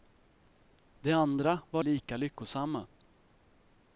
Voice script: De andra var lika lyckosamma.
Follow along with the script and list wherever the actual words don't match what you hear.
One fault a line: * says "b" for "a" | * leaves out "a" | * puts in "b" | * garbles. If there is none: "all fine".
all fine